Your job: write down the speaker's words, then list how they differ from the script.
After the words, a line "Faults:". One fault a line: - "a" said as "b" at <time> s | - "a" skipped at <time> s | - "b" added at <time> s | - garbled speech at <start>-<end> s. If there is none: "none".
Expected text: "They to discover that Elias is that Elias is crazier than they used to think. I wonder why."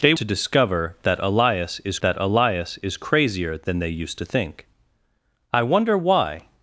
"They to discover that Elias is that Elias is crazier than they used to think. I wonder why."
Faults:
none